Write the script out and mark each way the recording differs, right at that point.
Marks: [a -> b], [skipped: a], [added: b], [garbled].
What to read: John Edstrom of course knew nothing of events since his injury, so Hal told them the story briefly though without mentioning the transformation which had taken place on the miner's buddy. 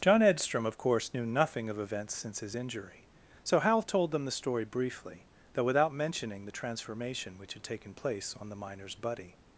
John Edstrom of course knew nothing of events since his injury, so Hal told them the story briefly though without mentioning the transformation which had taken place on the miner's buddy.